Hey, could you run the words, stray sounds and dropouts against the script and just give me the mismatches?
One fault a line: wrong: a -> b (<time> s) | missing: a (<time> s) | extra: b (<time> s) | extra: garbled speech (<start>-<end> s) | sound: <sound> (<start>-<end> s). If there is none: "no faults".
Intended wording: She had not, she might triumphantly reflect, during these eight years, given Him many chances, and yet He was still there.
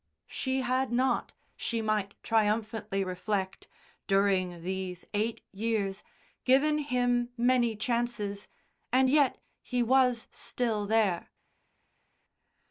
no faults